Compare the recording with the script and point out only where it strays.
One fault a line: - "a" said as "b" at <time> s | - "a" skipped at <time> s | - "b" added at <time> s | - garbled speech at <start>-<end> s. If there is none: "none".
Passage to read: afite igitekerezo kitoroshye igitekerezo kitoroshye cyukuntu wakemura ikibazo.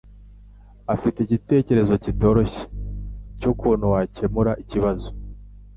- "igitekerezo kitoroshye" skipped at 2.6 s